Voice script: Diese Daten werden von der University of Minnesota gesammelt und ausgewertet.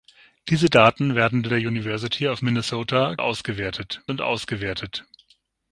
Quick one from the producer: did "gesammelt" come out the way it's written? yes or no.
no